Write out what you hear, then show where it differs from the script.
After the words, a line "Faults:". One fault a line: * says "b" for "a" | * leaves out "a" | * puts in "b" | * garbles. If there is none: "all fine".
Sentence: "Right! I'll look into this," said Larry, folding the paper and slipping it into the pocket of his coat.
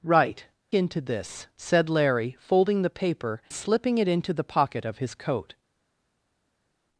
"Right! Into this," said Larry, folding the paper slipping it into the pocket of his coat.
Faults:
* leaves out "I'll look"
* leaves out "and"